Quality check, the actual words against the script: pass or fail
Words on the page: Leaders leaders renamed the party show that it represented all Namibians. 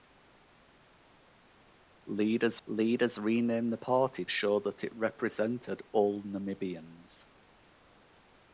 pass